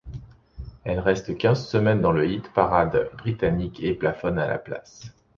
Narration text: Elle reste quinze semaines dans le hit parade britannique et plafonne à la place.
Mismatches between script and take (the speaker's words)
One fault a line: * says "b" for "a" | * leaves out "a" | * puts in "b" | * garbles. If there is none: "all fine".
all fine